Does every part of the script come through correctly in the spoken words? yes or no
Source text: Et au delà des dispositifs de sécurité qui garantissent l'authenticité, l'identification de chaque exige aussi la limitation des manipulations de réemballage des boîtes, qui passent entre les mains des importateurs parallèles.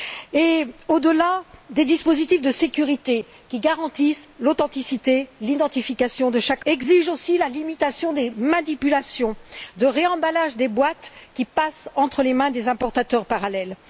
yes